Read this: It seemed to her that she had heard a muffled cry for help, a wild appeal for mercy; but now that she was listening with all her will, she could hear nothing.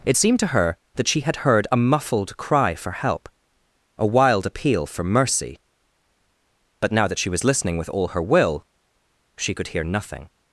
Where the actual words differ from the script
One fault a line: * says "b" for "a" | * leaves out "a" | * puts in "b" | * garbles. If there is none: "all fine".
all fine